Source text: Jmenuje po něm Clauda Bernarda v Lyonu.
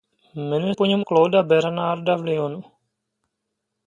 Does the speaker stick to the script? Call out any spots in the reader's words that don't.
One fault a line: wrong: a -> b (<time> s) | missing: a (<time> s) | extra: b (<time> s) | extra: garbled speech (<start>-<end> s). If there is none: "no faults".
no faults